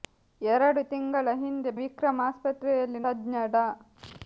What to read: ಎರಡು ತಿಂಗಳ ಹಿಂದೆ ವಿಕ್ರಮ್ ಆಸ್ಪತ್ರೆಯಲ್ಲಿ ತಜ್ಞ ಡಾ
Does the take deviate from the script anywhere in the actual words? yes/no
no